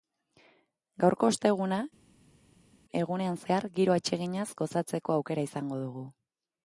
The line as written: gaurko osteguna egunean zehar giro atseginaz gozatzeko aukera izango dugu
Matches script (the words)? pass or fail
pass